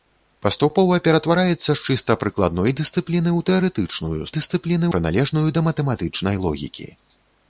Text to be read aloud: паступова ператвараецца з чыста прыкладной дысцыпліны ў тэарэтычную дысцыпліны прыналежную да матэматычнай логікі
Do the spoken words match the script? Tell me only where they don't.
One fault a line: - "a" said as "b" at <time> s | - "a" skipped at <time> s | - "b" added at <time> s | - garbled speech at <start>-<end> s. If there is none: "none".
none